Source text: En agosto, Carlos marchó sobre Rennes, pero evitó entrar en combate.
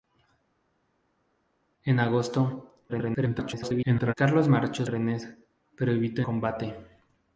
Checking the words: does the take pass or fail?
fail